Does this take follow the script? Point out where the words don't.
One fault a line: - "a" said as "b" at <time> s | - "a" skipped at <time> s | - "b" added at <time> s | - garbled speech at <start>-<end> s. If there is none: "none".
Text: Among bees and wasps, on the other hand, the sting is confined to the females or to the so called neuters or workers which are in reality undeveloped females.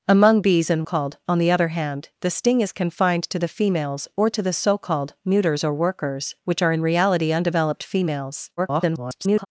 - "wasps" said as "called" at 0.8 s
- garbled speech at 8.6-9.5 s